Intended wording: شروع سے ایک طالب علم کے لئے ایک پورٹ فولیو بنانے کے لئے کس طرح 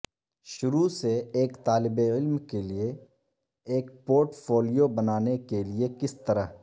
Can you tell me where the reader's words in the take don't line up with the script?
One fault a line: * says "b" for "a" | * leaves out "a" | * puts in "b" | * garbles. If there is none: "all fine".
all fine